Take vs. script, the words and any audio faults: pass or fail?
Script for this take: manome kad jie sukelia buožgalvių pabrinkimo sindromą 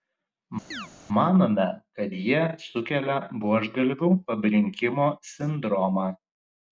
fail